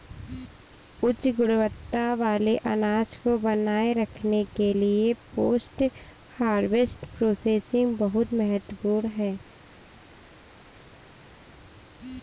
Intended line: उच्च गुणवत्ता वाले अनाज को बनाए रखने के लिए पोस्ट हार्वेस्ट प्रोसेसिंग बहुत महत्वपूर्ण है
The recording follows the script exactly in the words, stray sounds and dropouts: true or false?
true